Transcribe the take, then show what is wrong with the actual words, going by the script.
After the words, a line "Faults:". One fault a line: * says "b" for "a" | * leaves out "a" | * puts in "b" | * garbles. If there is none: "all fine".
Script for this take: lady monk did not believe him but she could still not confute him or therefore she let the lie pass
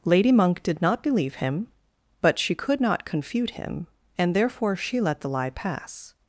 lady monk did not believe him but she could not confute him and therefore she let the lie pass
Faults:
* leaves out "still"
* says "and" for "or"